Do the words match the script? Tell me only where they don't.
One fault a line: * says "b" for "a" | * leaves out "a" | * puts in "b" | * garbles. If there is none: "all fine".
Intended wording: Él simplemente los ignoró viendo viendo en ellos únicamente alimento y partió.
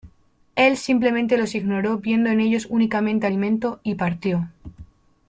* leaves out "viendo"